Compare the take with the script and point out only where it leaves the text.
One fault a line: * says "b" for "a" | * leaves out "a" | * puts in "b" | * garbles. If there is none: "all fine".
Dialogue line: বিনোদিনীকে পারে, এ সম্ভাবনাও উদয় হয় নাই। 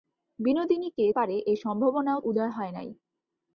all fine